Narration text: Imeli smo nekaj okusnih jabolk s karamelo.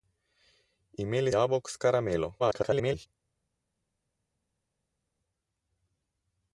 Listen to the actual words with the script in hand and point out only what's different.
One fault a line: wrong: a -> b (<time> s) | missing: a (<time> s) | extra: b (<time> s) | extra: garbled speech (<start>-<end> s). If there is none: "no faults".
missing: smo nekaj okusnih (1.3 s)
extra: garbled speech (2.4-3.1 s)